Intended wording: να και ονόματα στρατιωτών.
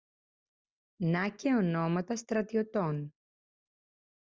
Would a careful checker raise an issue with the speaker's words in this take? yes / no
no